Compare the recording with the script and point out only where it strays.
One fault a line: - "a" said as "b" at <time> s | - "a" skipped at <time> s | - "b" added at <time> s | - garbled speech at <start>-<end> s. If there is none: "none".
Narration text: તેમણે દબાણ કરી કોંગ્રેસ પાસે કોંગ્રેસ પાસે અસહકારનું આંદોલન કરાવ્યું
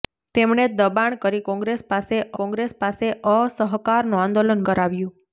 none